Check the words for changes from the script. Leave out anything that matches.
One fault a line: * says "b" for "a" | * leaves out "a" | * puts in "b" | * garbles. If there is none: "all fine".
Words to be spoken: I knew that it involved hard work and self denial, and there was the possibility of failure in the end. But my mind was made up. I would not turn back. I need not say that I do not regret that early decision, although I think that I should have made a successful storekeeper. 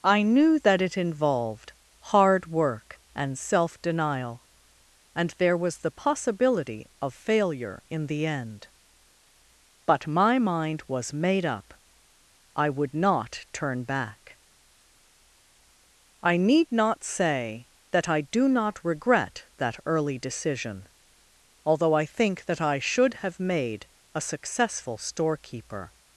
all fine